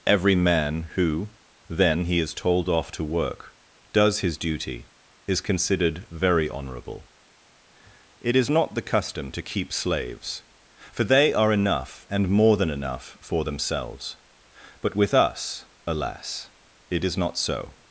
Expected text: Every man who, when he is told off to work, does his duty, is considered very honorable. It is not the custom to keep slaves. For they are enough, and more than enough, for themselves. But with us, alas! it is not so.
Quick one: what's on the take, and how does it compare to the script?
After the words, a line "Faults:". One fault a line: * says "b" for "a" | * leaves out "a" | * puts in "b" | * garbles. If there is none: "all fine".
Every man who, then he is told off to work, does his duty, is considered very honorable. It is not the custom to keep slaves. For they are enough, and more than enough, for themselves. But with us, alas! it is not so.
Faults:
* says "then" for "when"